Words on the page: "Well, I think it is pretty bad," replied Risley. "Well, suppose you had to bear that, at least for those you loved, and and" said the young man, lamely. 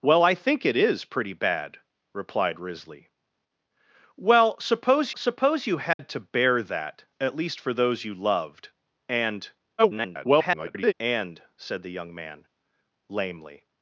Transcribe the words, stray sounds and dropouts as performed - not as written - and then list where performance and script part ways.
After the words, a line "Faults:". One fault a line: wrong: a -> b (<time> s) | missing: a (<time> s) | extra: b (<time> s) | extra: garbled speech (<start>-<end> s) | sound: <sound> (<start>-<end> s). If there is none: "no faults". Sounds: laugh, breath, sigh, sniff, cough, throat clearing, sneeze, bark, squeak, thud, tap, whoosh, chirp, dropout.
"Well, I think it is pretty bad," replied Risley. "Well, suppose suppose you had to bear that, at least for those you loved, and [garbled] and" said the young man, lamely.
Faults:
extra: suppose (5.2 s)
sound: dropout (5.9-6.0 s)
extra: garbled speech (9.8-10.9 s)